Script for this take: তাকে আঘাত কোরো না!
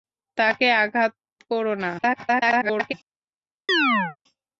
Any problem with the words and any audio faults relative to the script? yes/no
yes